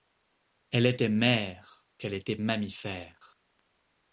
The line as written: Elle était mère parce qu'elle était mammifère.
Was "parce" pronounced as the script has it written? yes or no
no